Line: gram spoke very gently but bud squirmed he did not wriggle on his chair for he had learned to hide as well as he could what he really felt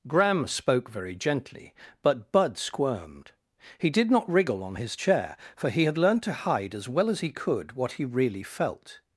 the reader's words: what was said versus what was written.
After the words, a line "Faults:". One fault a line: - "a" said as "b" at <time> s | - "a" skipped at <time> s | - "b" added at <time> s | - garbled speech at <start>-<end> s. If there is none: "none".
gram spoke very gently but bud squirmed he did not wriggle on his chair for he had learned to hide as well as he could what he really felt
Faults:
none